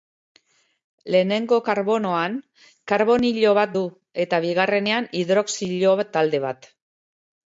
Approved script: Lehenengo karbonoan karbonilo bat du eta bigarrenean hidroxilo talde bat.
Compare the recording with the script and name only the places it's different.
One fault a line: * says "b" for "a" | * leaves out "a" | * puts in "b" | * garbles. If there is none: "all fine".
all fine